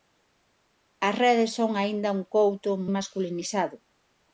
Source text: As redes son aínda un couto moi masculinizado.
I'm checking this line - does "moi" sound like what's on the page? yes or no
no